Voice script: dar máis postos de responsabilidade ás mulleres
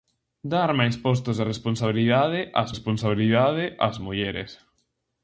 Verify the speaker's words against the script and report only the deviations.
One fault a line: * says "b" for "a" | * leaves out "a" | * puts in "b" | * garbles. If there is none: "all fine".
* puts in "responsabilidade ás"